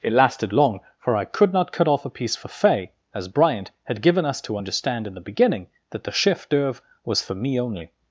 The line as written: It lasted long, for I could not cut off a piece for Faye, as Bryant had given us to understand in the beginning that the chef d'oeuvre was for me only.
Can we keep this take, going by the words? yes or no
yes